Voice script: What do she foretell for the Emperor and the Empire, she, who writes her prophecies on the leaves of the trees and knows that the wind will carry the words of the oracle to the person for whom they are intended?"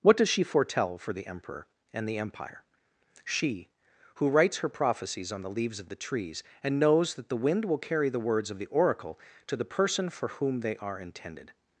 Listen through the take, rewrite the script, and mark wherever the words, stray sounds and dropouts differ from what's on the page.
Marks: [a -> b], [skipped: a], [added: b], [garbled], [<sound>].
What [do -> does] she foretell for the Emperor and the Empire, she, who writes her prophecies on the leaves of the trees and knows that the wind will carry the words of the oracle to the person for whom they are intended?"